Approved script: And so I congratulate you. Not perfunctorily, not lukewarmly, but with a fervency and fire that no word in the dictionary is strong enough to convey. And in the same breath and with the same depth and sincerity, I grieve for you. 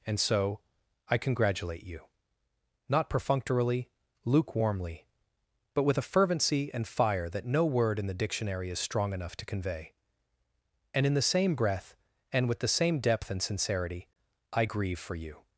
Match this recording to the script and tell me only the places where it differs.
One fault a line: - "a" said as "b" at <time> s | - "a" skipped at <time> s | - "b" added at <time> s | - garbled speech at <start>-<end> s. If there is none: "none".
- "not" skipped at 3.9 s